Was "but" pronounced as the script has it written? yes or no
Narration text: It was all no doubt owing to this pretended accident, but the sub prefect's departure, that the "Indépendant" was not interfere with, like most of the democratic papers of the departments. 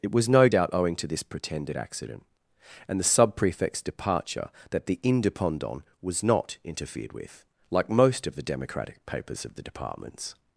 no